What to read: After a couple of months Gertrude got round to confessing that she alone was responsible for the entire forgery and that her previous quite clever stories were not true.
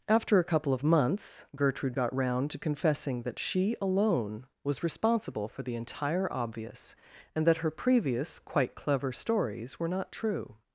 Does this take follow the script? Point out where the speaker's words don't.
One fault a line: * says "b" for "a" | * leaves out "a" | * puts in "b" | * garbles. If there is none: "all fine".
* says "obvious" for "forgery"